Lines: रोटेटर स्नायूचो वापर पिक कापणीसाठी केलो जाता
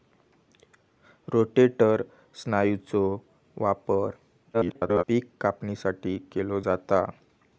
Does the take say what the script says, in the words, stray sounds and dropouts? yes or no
no